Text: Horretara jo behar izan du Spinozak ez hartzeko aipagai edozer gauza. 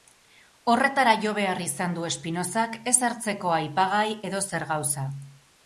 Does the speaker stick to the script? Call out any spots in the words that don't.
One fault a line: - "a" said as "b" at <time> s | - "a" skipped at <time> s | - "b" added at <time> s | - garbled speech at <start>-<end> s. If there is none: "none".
none